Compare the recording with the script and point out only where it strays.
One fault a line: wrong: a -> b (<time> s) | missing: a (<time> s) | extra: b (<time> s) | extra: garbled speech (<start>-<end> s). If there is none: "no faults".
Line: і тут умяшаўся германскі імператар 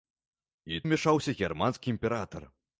missing: тут (0.8 s)